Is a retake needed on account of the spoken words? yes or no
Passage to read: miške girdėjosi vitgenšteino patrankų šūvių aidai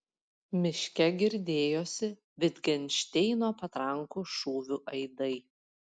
no